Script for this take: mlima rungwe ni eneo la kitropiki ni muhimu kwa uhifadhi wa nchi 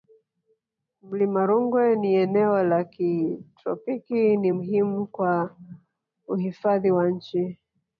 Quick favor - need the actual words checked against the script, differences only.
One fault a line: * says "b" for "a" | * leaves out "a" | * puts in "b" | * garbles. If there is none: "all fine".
all fine